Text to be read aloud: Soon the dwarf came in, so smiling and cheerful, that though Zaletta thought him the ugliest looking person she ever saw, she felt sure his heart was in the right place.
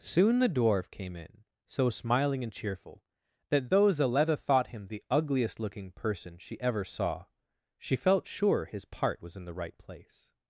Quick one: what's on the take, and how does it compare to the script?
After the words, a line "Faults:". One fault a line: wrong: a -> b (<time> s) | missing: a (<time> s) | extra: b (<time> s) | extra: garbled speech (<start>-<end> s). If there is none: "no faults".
Soon the dwarf came in, so smiling and cheerful, that though Zaletta thought him the ugliest looking person she ever saw, she felt sure his part was in the right place.
Faults:
wrong: heart -> part (8.9 s)